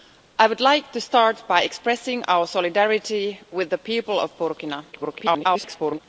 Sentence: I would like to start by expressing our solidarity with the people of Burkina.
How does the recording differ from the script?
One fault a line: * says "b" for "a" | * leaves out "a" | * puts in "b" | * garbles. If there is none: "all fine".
* garbles